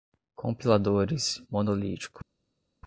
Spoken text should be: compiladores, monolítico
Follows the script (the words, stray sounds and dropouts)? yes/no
yes